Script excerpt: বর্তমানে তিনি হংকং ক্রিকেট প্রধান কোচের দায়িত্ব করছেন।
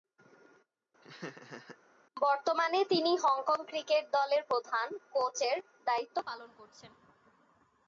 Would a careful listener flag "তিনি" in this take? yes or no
no